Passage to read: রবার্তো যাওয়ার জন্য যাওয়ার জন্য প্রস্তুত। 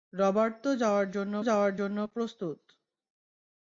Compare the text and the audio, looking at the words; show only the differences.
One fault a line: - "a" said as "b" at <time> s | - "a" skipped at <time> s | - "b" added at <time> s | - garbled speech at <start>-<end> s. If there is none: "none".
none